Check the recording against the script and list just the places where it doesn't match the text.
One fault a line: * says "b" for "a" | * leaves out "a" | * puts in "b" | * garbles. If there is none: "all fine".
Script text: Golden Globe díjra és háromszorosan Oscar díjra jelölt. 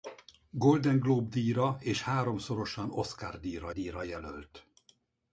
* puts in "díjra"